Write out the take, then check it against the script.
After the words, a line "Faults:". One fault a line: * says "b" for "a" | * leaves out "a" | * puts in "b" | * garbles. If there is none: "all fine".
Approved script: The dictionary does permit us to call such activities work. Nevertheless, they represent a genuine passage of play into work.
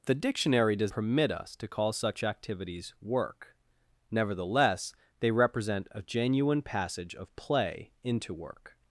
The dictionary does permit us to call such activities work. Nevertheless, they represent a genuine passage of play into work.
Faults:
all fine